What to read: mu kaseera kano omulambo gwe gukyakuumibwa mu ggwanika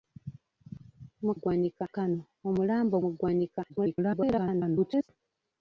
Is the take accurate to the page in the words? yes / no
no